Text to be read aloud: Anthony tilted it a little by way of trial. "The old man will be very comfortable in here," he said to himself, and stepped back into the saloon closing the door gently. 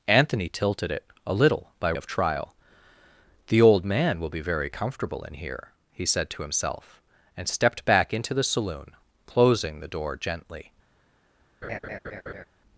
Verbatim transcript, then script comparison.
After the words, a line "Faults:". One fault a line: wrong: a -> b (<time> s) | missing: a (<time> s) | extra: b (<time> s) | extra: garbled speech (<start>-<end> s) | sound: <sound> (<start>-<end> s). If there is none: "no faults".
Anthony tilted it a little by of trial. "The old man will be very comfortable in here," he said to himself, and stepped back into the saloon closing the door gently.
Faults:
missing: way (1.9 s)
sound: laugh (11.6-12.4 s)